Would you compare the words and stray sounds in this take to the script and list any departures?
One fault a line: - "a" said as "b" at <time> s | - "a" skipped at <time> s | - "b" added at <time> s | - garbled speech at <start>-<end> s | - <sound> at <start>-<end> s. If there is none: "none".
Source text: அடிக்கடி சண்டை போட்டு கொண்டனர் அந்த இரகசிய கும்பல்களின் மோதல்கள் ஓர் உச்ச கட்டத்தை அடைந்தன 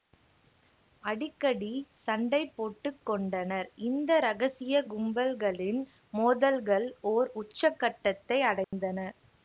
- "அந்த" said as "இந்த" at 3.9 s
- dropout at 8.6-8.7 s